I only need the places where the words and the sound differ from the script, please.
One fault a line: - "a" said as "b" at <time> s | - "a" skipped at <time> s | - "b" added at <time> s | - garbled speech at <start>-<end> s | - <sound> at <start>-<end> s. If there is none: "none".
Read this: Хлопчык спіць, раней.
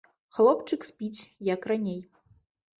- "як" added at 1.5 s